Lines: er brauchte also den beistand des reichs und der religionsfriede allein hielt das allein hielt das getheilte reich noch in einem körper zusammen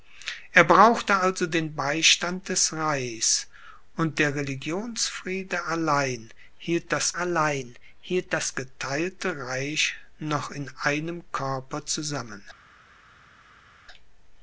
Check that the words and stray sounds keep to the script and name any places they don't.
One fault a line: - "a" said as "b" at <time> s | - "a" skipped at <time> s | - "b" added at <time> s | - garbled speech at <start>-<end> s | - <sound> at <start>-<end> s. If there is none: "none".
none